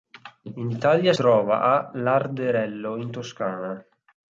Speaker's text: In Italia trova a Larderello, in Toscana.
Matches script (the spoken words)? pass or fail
pass